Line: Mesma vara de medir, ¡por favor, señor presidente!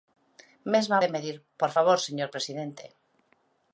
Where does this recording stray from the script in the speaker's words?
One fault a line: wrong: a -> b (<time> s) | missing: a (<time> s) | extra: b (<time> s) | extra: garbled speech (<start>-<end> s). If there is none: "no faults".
missing: vara (1.0 s)